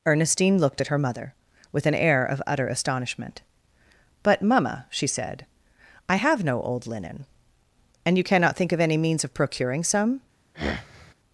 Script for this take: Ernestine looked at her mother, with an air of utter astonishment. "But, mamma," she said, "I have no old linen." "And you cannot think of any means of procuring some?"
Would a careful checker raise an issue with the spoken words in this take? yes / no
no